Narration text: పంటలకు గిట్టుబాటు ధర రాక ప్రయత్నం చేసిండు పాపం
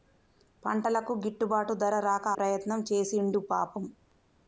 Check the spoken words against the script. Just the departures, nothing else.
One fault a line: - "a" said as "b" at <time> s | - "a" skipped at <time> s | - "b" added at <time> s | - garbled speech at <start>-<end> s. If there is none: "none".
none